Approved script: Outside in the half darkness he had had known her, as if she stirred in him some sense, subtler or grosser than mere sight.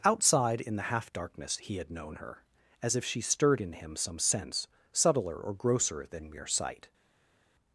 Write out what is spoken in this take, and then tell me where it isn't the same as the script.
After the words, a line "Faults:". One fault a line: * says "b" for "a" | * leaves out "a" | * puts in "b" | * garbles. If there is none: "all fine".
Outside in the half darkness he had known her, as if she stirred in him some sense, subtler or grosser than mere sight.
Faults:
* leaves out "had"